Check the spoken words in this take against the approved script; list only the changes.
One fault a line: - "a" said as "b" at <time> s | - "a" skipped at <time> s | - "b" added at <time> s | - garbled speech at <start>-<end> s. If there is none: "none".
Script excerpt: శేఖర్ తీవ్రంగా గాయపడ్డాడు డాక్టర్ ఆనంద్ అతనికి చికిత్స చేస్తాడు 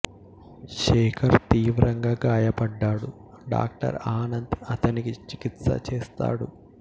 none